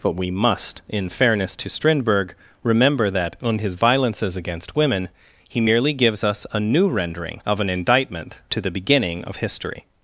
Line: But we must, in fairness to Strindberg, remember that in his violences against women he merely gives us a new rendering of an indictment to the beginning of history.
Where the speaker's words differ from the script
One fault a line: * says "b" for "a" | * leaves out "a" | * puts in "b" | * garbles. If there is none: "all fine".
all fine